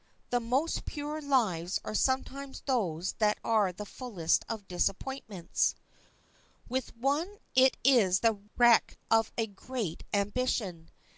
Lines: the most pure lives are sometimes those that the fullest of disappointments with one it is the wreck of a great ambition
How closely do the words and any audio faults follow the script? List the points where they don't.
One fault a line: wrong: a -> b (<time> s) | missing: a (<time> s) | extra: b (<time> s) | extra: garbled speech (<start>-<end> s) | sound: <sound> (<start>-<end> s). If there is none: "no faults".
extra: are (3.4 s)